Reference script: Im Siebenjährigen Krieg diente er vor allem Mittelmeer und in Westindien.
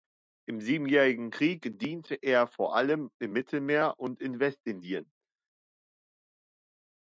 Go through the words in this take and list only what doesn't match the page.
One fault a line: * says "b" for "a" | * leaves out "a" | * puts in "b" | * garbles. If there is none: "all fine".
* puts in "im"